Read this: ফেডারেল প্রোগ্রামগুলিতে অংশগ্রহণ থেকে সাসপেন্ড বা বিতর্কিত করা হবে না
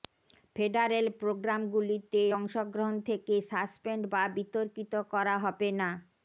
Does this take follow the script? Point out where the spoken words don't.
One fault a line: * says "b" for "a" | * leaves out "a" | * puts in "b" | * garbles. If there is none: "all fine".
all fine